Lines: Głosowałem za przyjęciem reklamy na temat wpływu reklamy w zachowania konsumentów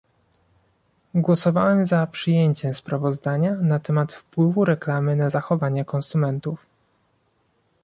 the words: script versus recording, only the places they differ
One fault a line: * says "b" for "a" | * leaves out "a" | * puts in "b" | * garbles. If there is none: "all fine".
* says "sprawozdania" for "reklamy"
* says "na" for "w"